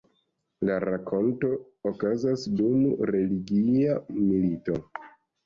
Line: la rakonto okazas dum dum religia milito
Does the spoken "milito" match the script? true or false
true